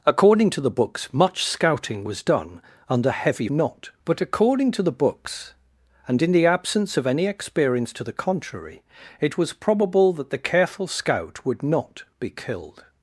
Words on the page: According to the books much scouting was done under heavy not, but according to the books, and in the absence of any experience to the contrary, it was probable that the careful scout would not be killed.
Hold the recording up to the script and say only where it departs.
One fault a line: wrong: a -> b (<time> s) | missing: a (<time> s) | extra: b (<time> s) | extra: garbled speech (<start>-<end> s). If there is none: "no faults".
no faults